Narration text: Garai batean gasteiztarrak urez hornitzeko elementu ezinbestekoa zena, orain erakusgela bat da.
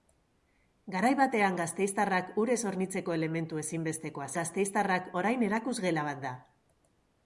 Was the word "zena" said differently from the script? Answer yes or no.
yes